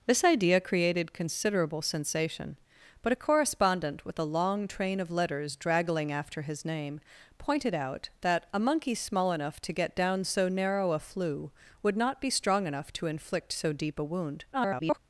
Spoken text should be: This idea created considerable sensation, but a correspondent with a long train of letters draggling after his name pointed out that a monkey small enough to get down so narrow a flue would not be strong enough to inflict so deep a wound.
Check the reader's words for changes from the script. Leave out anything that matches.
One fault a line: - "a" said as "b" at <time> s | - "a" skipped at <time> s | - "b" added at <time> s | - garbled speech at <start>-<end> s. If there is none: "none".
- garbled speech at 14.5-15.0 s